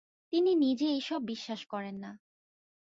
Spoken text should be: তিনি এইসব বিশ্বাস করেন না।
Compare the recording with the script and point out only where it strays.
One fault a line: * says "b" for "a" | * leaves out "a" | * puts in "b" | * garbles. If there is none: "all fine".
* puts in "নিজে"